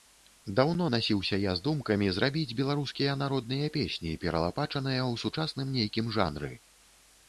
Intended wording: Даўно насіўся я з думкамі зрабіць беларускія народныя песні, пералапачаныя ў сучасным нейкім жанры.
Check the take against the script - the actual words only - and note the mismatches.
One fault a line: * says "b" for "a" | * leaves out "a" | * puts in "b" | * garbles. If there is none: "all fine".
all fine